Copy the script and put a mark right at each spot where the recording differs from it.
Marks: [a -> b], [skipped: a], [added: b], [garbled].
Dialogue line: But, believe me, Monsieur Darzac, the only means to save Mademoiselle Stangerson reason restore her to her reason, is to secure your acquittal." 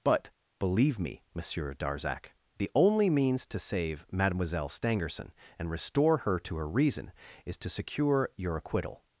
But, believe me, Monsieur Darzac, the only means to save Mademoiselle Stangerson [reason -> and] restore her to her reason, is to secure your acquittal."